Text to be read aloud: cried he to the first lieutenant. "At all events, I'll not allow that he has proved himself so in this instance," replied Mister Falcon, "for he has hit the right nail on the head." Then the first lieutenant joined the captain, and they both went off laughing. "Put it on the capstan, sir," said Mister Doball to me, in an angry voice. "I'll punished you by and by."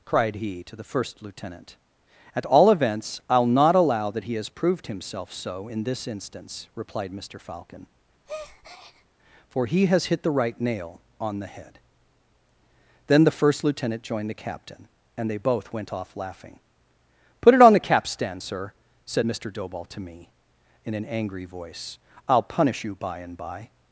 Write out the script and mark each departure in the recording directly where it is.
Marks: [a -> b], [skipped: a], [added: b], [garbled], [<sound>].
cried he to the first lieutenant. "At all events, I'll not allow that he has proved himself so in this instance," replied Mister Falcon, [breath] "for he has hit the right nail on the head." Then the first lieutenant joined the captain, and they both went off laughing. "Put it on the capstan, sir," said Mister Doball to me, in an angry voice. "I'll [punished -> punish] you by and by."